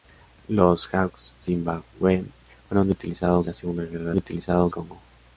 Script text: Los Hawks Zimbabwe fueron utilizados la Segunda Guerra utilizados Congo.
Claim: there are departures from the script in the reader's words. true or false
false